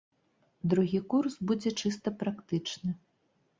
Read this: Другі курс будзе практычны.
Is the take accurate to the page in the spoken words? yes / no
no